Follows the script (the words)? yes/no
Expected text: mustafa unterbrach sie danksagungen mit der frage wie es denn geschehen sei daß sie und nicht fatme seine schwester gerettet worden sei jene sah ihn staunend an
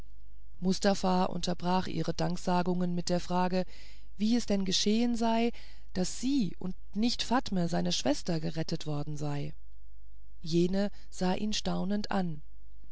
no